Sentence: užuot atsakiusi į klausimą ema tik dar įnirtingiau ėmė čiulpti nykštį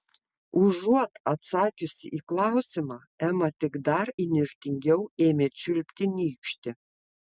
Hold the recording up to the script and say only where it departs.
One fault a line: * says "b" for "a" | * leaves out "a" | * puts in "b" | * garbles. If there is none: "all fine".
all fine